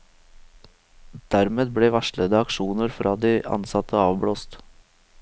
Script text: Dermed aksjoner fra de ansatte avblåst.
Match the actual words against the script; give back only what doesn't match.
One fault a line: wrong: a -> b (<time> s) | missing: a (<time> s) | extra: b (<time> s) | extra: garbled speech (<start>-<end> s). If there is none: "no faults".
extra: ble varslede (1.8 s)